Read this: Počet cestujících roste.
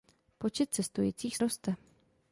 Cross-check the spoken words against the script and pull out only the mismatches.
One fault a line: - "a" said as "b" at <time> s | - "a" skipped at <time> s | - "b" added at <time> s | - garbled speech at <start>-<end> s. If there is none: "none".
none